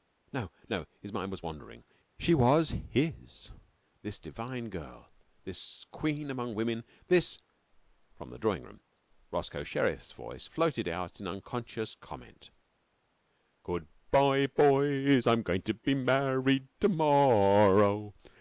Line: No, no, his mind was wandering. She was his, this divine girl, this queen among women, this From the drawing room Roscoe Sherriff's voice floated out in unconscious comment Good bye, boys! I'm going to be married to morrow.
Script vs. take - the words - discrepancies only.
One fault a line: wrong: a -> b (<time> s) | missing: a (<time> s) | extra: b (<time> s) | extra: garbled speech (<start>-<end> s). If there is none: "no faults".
no faults